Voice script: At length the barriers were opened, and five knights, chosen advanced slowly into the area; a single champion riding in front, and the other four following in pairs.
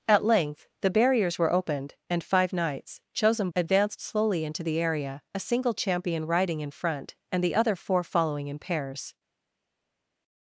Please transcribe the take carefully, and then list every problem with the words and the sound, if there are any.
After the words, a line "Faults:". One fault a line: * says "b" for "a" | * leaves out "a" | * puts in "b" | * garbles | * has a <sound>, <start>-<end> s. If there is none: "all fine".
At length the barriers were opened, and five knights, chosen advanced slowly into the area; a single champion riding in front, and the other four following in pairs.
Faults:
all fine